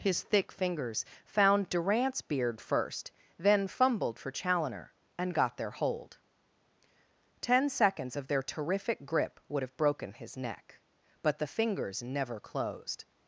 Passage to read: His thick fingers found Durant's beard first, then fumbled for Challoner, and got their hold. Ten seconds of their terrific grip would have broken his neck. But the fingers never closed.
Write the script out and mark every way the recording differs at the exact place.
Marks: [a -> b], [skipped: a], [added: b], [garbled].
His thick fingers found Durant's beard first, then fumbled for Challoner, and got their hold. Ten seconds of their terrific grip would have broken his neck. But the fingers never closed.